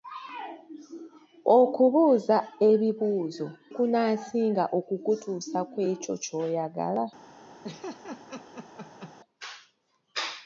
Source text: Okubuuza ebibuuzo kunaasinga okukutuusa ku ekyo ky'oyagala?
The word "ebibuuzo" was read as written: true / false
true